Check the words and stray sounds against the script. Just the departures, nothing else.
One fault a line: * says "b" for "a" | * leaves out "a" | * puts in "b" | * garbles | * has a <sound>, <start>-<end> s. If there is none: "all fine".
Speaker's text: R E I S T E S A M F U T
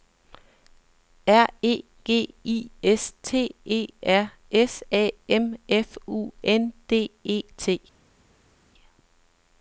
* puts in "G"
* puts in "R"
* puts in "N D E"